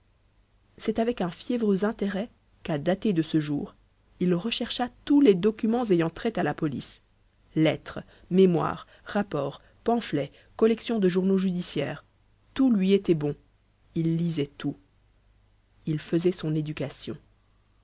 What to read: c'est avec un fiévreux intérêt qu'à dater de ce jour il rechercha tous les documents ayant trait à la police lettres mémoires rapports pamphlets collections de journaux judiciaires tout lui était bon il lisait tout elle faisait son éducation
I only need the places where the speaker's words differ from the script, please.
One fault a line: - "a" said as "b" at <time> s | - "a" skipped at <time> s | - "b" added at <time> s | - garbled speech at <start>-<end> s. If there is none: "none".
- "elle" said as "il" at 15.8 s